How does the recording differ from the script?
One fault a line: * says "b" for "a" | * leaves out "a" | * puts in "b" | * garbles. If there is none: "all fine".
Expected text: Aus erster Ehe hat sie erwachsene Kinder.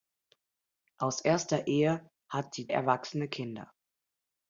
all fine